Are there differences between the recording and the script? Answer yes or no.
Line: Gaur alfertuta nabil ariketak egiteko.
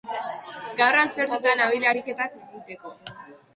no